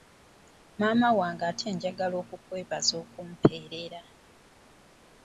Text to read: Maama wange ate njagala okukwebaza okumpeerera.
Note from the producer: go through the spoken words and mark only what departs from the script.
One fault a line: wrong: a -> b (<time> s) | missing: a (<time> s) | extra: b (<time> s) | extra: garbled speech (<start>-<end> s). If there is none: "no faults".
no faults